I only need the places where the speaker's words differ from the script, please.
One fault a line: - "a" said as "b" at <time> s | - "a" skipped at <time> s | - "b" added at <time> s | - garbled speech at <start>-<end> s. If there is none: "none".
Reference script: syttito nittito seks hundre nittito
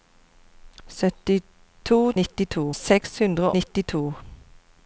none